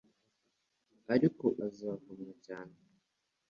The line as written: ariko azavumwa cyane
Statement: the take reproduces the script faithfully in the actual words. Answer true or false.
true